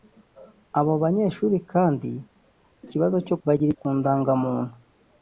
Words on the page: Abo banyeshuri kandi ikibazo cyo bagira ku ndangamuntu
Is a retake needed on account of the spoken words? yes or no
no